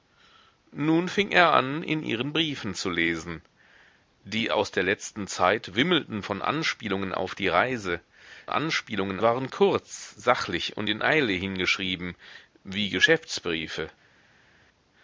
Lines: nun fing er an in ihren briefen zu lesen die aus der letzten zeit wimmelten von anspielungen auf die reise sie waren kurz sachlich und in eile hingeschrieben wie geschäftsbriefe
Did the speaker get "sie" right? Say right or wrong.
wrong